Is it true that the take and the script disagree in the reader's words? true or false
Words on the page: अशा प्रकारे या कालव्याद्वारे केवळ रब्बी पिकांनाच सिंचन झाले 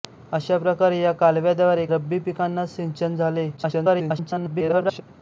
true